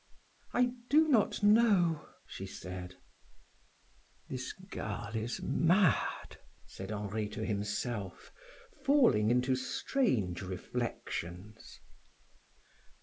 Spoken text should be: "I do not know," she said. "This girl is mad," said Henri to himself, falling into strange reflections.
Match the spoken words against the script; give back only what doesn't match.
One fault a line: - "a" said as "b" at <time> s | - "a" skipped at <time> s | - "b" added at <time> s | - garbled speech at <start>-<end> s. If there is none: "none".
none